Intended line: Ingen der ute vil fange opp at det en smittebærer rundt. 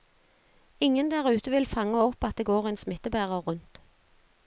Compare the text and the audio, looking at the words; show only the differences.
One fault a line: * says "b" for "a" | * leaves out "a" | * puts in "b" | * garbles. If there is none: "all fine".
* puts in "går"